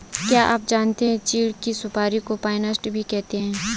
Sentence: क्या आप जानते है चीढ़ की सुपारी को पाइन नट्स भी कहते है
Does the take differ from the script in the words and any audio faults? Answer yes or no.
no